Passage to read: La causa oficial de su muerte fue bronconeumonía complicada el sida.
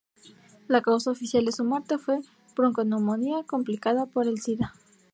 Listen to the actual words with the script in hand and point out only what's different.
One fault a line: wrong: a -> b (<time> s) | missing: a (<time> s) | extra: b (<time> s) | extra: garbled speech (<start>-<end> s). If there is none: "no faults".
extra: por (4.1 s)